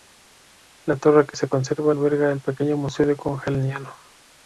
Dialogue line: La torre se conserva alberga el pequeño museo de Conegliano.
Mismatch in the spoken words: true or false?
true